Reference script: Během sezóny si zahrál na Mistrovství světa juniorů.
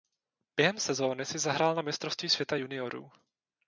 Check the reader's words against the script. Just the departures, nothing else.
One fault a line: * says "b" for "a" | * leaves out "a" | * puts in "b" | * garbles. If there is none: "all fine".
all fine